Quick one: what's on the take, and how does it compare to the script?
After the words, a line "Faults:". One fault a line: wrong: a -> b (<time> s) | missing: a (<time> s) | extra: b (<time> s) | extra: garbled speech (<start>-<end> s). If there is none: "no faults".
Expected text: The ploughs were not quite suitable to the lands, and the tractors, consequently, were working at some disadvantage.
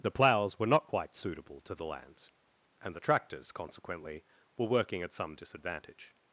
The ploughs were not quite suitable to the lands, and the tractors, consequently, were working at some disadvantage.
Faults:
no faults